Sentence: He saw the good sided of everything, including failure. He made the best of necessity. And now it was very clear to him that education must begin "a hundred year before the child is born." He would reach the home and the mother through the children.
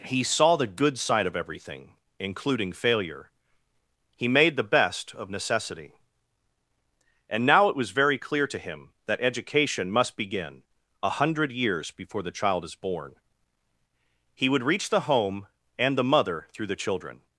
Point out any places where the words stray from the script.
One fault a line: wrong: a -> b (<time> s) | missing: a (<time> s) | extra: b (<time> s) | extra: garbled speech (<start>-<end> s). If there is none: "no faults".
wrong: sided -> side (1.0 s)
wrong: year -> years (11.5 s)